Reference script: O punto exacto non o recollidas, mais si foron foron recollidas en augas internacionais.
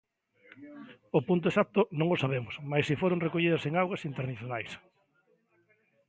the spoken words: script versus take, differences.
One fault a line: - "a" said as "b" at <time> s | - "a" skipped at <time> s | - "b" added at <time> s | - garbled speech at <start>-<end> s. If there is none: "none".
- "recollidas" said as "sabemos" at 2.2 s
- "foron" skipped at 3.2 s